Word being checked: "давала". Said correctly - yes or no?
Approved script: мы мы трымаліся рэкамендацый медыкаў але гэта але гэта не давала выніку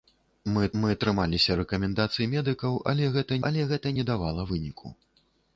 yes